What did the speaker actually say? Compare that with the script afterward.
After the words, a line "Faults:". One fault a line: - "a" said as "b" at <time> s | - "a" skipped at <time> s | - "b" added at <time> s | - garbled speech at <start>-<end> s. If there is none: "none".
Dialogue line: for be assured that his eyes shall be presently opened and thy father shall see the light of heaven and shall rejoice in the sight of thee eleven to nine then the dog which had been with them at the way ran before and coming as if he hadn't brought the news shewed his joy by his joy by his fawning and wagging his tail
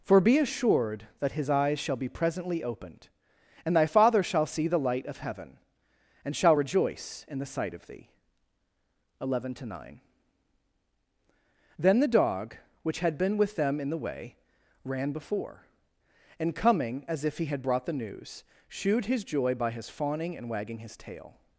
for be assured that his eyes shall be presently opened and thy father shall see the light of heaven and shall rejoice in the sight of thee eleven to nine then the dog which had been with them in the way ran before and coming as if he had brought the news shewed his joy by his fawning and wagging his tail
Faults:
- "at" said as "in" at 13.8 s
- "hadn't" said as "had" at 17.5 s
- "joy by his" skipped at 19.9 s